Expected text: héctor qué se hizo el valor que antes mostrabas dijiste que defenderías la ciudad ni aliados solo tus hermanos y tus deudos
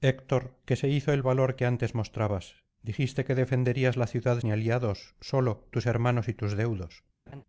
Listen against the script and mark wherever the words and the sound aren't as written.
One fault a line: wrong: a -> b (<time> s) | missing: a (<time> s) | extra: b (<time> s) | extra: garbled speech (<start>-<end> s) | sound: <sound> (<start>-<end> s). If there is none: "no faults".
sound: laugh (7.3-7.4 s)